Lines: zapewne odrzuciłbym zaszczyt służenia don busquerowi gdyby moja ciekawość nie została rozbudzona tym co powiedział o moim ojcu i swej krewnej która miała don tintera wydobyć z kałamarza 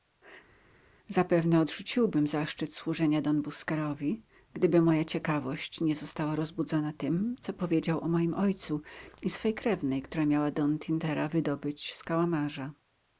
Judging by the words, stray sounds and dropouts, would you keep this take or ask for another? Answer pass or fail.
pass